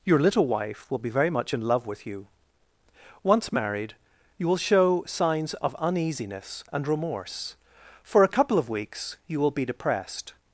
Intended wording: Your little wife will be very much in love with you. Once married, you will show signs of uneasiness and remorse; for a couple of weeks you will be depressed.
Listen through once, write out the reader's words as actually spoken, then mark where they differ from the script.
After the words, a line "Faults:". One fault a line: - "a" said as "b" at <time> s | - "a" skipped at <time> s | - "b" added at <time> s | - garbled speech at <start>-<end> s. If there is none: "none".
Your little wife will be very much in love with you. Once married, you will show signs of uneasiness and remorse; for a couple of weeks you will be depressed.
Faults:
none